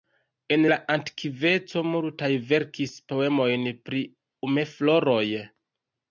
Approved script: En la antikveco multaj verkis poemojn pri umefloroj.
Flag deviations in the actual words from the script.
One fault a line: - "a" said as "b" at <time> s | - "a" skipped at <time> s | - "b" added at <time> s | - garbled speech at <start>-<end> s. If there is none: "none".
none